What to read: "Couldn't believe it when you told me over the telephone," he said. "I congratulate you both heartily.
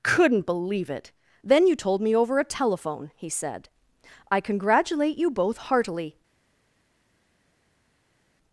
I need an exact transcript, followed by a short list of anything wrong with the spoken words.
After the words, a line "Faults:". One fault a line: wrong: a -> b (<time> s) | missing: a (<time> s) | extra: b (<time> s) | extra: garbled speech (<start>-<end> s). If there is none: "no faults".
"Couldn't believe it then you told me over a telephone," he said. "I congratulate you both heartily.
Faults:
wrong: when -> then (1.4 s)
wrong: the -> a (2.4 s)